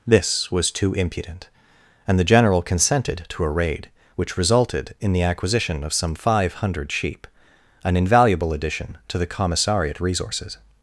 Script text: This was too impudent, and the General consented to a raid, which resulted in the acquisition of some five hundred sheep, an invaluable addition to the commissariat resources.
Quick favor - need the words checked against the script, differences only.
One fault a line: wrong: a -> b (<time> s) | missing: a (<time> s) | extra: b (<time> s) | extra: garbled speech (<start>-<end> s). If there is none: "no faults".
no faults